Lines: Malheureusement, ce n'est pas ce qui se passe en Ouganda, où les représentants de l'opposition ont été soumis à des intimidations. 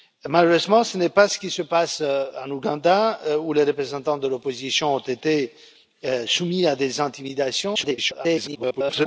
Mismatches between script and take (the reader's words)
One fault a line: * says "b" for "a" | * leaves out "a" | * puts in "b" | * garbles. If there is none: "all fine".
* garbles